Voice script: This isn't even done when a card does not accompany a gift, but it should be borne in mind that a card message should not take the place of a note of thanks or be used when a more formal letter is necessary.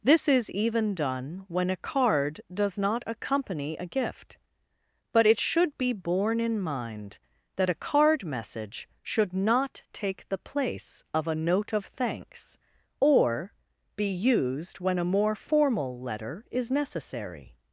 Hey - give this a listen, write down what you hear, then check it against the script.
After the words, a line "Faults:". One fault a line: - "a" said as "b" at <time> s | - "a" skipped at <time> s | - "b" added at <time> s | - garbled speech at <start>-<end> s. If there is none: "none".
This is even done when a card does not accompany a gift, but it should be borne in mind that a card message should not take the place of a note of thanks or be used when a more formal letter is necessary.
Faults:
- "isn't" said as "is" at 0.3 s